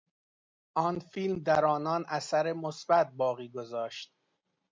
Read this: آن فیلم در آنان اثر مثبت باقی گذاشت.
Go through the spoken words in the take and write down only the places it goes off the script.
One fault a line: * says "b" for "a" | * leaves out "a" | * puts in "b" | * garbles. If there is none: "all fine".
all fine